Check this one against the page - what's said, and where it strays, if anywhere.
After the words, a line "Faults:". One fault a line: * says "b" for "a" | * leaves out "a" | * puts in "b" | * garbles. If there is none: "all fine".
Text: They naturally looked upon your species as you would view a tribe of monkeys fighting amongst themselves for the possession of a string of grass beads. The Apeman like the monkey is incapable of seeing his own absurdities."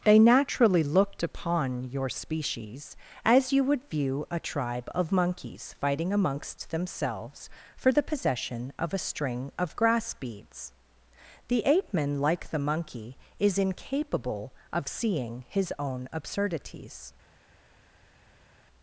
They naturally looked upon your species as you would view a tribe of monkeys fighting amongst themselves for the possession of a string of grass beads. The Apeman like the monkey is incapable of seeing his own absurdities."
Faults:
all fine